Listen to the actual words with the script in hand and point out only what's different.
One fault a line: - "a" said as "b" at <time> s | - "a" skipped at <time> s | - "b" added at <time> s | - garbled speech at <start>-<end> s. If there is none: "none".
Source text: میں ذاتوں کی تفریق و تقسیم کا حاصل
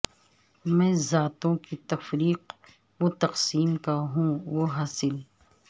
- "ہوں وہ" added at 4.1 s